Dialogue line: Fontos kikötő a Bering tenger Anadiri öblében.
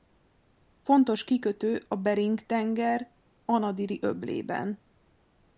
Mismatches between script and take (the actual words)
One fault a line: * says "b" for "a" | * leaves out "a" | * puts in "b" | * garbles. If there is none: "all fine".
all fine